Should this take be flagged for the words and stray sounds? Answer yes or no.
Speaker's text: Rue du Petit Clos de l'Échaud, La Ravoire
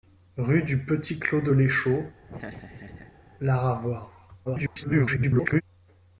yes